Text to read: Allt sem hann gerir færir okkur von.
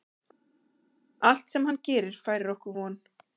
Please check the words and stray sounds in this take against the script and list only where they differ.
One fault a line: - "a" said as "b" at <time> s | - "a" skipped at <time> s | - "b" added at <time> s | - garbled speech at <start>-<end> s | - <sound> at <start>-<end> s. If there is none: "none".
none